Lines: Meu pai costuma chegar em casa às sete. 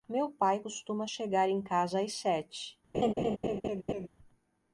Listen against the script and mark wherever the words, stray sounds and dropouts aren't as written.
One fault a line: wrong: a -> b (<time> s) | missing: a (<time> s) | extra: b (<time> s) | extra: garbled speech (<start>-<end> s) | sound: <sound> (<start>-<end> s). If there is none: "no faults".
sound: laugh (2.9-4.1 s)